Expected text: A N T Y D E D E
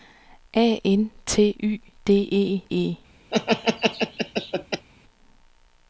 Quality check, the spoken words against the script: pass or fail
fail